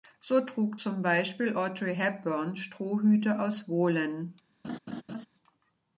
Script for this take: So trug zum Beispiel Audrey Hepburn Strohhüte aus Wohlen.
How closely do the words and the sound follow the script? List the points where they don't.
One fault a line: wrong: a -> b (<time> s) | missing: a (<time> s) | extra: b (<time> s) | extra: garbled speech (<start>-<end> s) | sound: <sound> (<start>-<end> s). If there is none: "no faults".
sound: laugh (4.6-5.3 s)